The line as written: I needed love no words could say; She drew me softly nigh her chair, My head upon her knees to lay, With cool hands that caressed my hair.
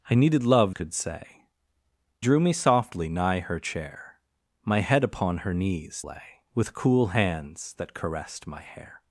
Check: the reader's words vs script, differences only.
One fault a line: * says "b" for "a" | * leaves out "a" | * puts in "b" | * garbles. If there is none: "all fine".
* leaves out "no words"
* leaves out "She"
* leaves out "to"